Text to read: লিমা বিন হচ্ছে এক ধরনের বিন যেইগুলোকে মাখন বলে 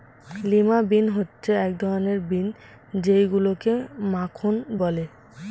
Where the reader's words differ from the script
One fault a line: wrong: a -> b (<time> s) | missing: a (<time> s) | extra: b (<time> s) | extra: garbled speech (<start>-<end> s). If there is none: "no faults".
no faults